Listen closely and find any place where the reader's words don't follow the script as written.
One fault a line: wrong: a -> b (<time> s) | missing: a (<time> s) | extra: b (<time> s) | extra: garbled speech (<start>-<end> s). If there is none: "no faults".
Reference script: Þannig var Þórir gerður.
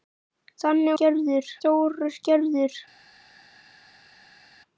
wrong: var -> gerður (1.0 s)